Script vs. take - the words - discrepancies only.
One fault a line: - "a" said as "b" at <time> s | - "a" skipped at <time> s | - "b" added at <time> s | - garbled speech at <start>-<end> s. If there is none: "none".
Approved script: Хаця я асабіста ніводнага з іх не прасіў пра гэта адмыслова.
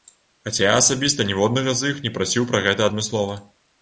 none